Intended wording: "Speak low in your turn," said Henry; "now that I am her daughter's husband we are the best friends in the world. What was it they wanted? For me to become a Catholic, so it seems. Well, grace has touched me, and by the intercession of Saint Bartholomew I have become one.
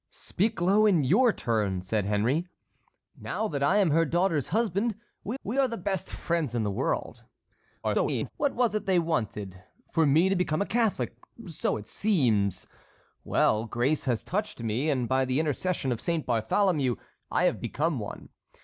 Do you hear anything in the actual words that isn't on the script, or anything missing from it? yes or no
yes